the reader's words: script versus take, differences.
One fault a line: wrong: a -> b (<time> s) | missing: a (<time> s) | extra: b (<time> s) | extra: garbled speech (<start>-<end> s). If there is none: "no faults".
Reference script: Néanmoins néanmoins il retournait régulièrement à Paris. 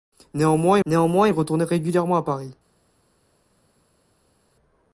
no faults